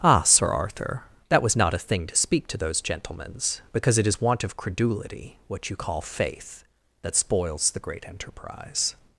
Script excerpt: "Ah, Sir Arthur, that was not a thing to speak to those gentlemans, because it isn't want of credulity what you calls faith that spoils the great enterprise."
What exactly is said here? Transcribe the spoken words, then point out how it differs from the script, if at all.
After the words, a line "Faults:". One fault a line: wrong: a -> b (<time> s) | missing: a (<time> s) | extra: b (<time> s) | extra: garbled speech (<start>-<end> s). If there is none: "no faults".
"Ah, Sir Arthur, that was not a thing to speak to those gentlemans, because it is want of credulity what you call faith that spoils the great enterprise."
Faults:
wrong: isn't -> is (4.1 s)
wrong: calls -> call (5.7 s)